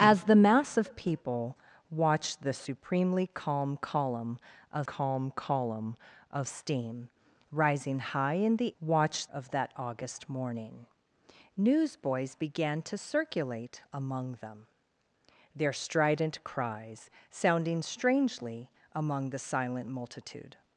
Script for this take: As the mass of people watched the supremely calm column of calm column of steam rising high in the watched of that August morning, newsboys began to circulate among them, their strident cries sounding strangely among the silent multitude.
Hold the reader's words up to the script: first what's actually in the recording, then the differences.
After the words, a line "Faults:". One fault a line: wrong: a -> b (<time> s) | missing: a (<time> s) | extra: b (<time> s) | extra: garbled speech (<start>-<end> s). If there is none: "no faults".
As the mass of people watched the supremely calm column of calm column of steam rising high in the watched of that August morning, newsboys began to circulate among them, their strident cries sounding strangely among the silent multitude.
Faults:
no faults